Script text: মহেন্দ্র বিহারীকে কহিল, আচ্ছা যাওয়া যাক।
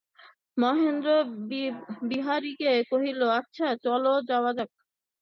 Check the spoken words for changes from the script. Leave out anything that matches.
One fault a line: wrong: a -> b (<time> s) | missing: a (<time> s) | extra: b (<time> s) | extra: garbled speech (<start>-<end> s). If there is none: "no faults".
extra: চলো (3.8 s)